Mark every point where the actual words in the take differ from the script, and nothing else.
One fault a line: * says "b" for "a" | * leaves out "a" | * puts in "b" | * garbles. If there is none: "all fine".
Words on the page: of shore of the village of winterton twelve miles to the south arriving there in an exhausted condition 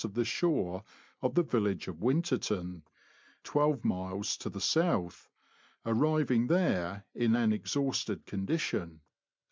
* puts in "the"